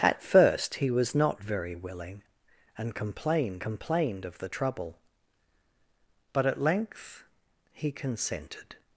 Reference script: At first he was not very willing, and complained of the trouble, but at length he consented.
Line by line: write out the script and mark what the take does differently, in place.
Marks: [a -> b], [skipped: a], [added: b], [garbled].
At first he was not very willing, and complained [added: complained] of the trouble, but at length he consented.